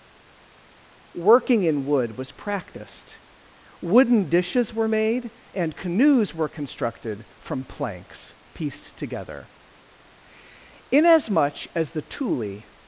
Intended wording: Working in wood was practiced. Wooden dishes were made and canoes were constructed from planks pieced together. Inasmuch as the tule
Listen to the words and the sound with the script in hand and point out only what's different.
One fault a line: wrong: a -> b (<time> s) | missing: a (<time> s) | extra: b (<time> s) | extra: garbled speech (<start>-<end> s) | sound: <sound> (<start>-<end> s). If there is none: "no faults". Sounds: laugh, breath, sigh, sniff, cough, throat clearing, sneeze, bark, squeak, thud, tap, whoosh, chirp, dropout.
no faults